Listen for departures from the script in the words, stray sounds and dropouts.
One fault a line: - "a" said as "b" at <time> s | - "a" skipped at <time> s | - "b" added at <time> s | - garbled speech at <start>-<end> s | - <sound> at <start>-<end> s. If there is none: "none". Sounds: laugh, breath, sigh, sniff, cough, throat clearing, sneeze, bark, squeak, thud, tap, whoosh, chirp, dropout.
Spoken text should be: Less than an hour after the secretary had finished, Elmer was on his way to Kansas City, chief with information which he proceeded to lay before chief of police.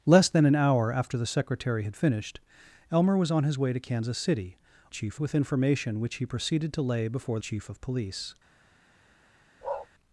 - bark at 9.6-9.9 s